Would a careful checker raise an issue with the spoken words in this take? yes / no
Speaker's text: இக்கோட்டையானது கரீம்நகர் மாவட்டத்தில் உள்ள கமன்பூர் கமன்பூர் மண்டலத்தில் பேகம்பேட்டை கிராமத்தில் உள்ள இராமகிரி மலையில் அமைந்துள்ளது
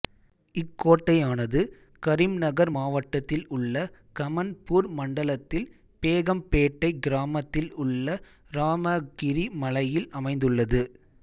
yes